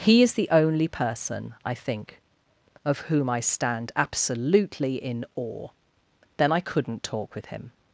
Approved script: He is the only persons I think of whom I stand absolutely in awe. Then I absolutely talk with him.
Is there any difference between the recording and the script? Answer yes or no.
yes